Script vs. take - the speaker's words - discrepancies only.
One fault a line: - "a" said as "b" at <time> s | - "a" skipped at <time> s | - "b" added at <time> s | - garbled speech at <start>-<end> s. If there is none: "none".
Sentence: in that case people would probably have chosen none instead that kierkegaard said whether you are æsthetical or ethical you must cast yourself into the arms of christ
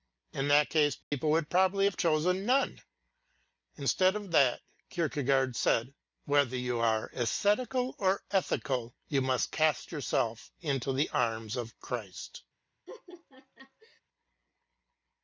- "of" added at 4.1 s